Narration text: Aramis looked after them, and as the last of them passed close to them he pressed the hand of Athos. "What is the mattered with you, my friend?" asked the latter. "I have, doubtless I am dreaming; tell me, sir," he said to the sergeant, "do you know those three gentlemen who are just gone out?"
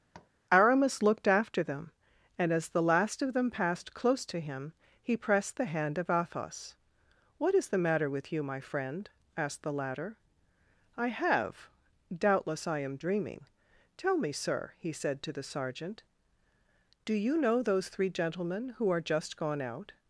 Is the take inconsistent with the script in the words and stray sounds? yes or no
yes